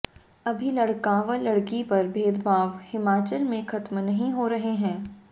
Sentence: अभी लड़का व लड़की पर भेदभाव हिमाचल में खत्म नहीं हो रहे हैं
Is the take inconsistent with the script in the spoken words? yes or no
no